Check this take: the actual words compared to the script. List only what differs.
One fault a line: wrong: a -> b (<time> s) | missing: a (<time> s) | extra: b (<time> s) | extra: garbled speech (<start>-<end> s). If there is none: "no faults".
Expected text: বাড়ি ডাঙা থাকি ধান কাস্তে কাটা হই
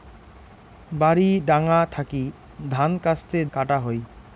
no faults